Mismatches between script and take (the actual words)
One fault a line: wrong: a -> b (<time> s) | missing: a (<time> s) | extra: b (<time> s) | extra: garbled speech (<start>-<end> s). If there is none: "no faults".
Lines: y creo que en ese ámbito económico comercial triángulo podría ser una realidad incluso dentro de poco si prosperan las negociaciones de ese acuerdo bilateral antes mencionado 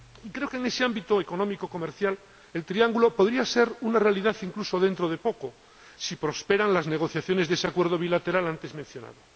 extra: el (2.5 s)